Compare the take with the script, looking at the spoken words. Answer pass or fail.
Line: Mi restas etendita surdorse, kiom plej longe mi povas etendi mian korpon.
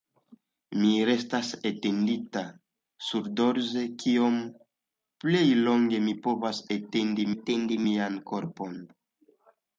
fail